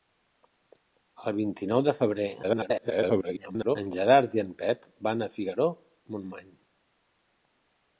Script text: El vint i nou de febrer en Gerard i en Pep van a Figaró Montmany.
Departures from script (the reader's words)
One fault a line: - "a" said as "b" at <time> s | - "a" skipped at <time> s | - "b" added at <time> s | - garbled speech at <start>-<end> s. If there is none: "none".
- garbled speech at 2.4-3.8 s